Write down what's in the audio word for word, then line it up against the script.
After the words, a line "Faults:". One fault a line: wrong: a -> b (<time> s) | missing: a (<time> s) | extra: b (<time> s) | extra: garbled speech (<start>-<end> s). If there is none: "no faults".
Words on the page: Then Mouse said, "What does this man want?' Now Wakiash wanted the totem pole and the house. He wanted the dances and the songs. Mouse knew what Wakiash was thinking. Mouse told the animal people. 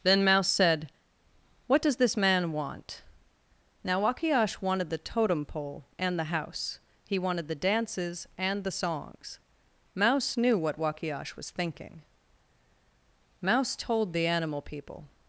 Then Mouse said, "What does this man want?' Now Wakiash wanted the totem pole and the house. He wanted the dances and the songs. Mouse knew what Wakiash was thinking. Mouse told the animal people.
Faults:
no faults